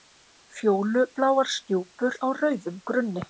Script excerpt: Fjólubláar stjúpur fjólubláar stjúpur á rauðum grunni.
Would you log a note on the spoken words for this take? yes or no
yes